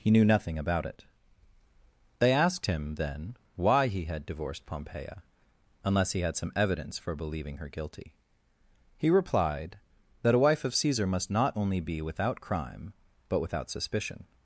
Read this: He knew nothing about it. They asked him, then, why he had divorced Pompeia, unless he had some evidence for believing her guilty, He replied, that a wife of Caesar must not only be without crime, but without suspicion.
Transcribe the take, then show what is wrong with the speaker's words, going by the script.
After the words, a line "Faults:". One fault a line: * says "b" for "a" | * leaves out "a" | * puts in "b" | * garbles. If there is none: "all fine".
He knew nothing about it. They asked him, then, why he had divorced Pompeia, unless he had some evidence for believing her guilty, He replied, that a wife of Caesar must not only be without crime, but without suspicion.
Faults:
all fine